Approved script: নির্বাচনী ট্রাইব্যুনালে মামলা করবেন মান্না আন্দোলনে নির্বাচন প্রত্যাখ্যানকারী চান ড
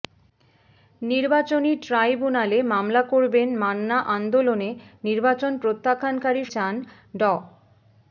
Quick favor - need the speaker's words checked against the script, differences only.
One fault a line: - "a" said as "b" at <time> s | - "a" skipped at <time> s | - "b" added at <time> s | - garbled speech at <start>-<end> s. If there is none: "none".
none